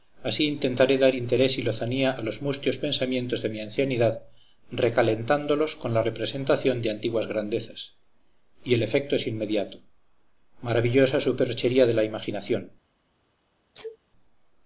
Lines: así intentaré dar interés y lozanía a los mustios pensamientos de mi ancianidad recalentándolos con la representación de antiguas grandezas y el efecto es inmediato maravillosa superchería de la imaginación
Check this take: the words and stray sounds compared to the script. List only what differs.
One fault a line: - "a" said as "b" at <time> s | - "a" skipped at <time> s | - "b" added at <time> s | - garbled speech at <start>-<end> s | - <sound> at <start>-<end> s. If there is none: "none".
- sneeze at 13.7-14.0 s